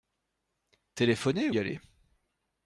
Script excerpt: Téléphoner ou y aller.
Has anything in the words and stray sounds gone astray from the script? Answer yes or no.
yes